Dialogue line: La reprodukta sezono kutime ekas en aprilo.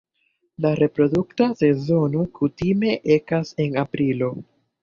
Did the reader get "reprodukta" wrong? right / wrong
right